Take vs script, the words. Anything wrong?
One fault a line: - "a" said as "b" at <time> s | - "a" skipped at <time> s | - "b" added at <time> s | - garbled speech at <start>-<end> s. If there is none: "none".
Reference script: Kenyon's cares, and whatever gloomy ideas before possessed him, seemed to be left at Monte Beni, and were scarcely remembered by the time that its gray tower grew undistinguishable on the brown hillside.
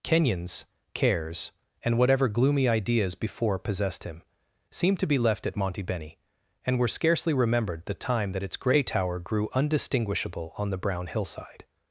- "by" skipped at 7.8 s